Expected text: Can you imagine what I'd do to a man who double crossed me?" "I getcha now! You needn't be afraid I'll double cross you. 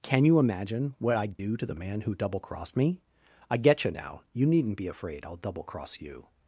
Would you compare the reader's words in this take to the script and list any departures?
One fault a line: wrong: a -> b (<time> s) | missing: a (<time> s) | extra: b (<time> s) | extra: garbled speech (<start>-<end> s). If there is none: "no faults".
wrong: a -> the (1.7 s)